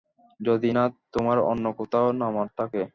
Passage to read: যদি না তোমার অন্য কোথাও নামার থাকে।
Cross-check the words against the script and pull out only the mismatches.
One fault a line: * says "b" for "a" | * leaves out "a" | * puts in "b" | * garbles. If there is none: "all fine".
all fine